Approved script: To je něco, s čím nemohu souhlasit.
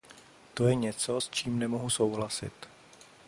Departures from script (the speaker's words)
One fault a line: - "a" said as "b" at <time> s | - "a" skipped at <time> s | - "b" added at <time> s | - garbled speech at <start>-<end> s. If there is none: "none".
none